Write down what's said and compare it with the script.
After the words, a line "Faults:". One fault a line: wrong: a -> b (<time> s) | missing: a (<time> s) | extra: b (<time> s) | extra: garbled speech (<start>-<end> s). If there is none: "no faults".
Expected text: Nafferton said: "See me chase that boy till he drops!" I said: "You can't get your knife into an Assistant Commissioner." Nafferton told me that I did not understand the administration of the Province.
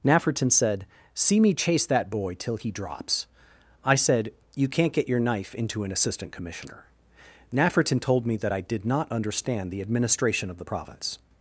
Nafferton said: "See me chase that boy till he drops!" I said: "You can't get your knife into an Assistant Commissioner." Nafferton told me that I did not understand the administration of the Province.
Faults:
no faults